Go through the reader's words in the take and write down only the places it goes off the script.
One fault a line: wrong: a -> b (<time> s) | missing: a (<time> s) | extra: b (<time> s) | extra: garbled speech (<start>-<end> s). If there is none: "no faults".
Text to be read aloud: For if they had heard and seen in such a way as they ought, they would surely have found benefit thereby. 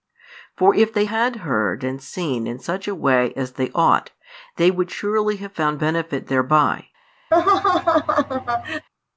no faults